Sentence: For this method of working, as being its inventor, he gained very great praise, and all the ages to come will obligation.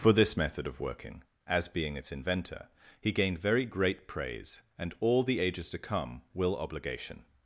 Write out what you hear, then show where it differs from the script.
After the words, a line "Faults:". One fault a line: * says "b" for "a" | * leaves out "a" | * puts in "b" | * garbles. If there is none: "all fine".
For this method of working, as being its inventor, he gained very great praise, and all the ages to come will obligation.
Faults:
all fine